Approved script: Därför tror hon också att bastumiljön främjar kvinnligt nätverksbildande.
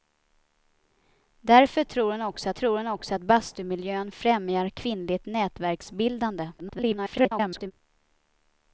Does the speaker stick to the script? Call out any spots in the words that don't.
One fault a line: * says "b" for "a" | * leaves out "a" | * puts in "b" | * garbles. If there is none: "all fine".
* puts in "tror hon också"
* garbles